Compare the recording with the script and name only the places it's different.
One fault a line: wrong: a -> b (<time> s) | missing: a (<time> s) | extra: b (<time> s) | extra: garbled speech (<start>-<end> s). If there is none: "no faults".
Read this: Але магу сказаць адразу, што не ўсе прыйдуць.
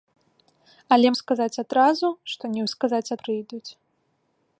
missing: магу (1.1 s)
wrong: ўсе -> сказаць (2.7 s)